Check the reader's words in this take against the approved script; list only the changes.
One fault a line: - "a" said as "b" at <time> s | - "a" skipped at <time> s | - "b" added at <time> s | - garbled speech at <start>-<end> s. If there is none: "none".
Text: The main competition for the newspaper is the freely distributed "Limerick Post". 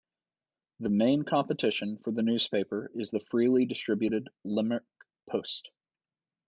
none